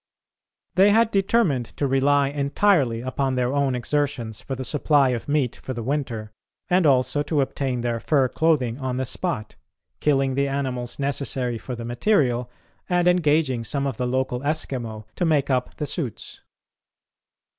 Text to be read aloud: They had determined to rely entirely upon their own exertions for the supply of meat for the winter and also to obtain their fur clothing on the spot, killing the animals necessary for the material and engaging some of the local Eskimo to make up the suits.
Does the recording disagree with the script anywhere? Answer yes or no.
no